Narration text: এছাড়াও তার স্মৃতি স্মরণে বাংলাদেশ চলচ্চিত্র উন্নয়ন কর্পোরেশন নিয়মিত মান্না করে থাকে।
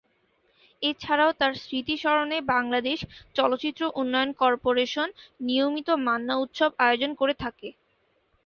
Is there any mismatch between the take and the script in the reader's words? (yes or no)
yes